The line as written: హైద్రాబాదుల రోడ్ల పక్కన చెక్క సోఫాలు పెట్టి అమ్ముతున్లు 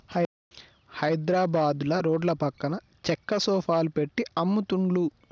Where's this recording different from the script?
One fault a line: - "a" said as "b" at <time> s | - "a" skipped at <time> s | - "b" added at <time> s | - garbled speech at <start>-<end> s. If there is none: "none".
none